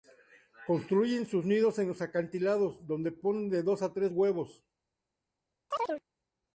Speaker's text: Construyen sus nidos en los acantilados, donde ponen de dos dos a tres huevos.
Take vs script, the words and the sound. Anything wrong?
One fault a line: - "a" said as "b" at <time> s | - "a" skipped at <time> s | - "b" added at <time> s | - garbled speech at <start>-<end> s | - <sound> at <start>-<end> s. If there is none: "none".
- "dos" skipped at 3.8 s
- chirp at 5.7-6.0 s